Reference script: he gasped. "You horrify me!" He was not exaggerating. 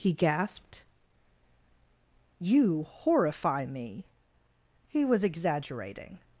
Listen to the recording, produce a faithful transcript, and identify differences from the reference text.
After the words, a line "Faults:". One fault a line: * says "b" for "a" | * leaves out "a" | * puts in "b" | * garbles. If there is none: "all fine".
he gasped. "You horrify me!" He was exaggerating.
Faults:
* leaves out "not"